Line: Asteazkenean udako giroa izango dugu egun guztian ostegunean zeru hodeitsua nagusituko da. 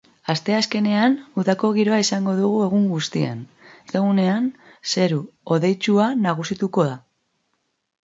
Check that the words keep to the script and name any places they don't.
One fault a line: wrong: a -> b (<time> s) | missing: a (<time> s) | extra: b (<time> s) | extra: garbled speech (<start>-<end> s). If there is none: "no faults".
no faults